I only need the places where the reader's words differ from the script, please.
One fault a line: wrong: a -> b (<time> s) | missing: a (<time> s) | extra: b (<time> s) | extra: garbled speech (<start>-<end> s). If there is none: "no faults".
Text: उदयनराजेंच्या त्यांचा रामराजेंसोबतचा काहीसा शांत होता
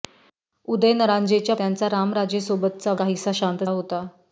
no faults